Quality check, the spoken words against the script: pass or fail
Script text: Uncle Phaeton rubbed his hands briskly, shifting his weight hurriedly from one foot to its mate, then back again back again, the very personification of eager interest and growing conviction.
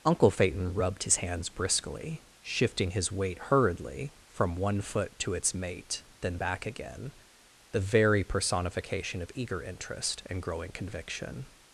fail